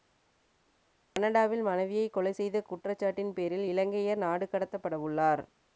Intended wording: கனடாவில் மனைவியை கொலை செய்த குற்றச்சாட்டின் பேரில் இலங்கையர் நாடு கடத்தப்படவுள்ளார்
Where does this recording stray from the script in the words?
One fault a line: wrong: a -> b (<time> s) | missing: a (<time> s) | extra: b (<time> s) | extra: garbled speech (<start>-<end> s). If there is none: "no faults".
no faults